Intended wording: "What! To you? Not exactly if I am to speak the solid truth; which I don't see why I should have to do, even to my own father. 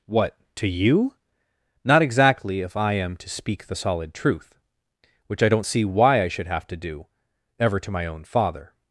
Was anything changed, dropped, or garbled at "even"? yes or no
yes